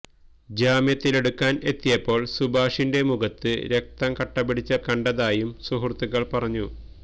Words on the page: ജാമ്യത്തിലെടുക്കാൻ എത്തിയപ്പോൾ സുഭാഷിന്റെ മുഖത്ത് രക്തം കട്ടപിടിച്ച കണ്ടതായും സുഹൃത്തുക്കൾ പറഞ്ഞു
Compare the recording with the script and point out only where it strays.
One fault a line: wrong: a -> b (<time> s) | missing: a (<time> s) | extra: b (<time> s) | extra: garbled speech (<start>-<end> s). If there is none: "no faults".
no faults